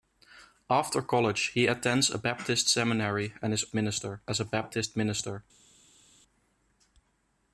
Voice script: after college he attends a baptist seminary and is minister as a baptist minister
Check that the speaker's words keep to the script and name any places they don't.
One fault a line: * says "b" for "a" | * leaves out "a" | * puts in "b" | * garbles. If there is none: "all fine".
all fine